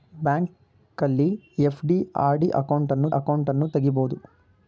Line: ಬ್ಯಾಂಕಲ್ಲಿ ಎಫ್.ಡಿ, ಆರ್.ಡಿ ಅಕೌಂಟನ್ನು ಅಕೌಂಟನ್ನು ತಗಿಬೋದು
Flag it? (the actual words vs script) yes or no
no